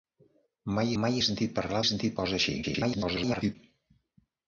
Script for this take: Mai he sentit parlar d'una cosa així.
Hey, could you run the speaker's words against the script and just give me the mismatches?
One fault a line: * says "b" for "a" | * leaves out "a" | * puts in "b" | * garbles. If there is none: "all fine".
* puts in "mai"
* says "sentit" for "d'una"
* garbles